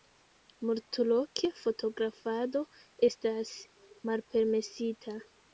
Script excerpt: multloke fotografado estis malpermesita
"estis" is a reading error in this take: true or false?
true